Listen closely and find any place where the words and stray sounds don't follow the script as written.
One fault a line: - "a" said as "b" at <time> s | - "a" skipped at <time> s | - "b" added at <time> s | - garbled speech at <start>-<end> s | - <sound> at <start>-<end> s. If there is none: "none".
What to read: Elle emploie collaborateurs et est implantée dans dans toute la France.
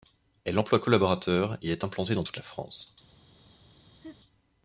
- "dans" skipped at 2.2 s
- laugh at 4.0-4.2 s